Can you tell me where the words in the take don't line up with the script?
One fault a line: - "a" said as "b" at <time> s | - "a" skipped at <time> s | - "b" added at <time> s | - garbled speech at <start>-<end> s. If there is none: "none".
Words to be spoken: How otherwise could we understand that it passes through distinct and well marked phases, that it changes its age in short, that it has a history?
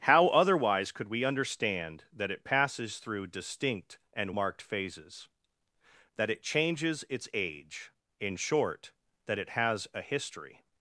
- "well" skipped at 4.3 s